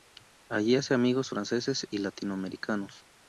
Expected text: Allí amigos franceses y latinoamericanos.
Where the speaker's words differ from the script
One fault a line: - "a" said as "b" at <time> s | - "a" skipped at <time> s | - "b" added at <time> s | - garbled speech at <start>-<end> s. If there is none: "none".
- "hace" added at 0.8 s